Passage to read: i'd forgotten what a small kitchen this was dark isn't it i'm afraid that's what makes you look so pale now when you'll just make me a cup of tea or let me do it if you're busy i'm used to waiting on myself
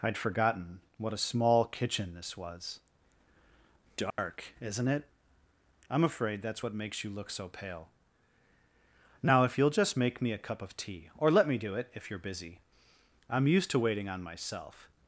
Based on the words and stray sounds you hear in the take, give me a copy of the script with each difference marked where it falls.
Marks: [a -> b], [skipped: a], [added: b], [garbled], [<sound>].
i'd forgotten what a small kitchen this was dark [dropout] isn't it i'm afraid that's what makes you look so pale now [when -> if] you'll just make me a cup of tea or let me do it if you're busy i'm used to waiting on myself